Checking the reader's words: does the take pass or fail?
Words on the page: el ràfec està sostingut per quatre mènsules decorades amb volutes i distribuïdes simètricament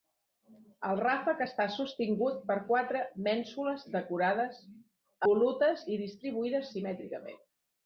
fail